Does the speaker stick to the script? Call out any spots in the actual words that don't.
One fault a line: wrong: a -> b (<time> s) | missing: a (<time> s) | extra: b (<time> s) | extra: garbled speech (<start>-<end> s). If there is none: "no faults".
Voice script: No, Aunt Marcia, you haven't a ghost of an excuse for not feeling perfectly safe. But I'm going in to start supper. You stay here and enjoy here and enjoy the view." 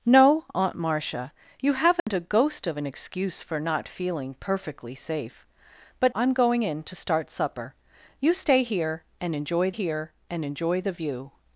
no faults